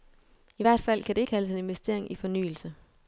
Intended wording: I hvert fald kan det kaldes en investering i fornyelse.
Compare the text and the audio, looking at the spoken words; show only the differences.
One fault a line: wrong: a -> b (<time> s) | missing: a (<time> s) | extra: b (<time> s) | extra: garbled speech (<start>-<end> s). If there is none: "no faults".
no faults